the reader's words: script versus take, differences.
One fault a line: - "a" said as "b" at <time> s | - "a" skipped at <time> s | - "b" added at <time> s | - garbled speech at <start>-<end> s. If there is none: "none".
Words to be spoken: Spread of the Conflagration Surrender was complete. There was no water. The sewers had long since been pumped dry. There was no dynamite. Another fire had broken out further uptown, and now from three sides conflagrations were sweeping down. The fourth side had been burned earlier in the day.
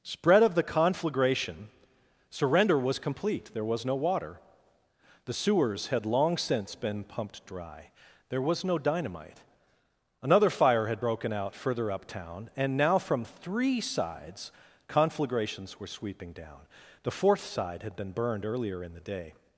none